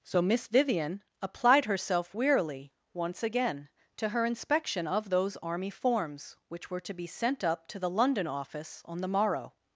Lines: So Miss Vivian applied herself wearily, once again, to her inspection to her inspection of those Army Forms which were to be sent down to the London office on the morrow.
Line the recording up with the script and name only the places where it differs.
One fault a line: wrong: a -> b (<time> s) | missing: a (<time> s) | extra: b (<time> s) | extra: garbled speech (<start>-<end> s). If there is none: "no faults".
missing: to her inspection (4.9 s)
wrong: down -> up (7.4 s)